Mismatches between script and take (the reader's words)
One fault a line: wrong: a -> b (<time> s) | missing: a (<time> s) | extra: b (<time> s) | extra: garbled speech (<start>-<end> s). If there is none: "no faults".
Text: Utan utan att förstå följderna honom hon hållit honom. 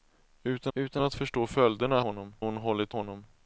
no faults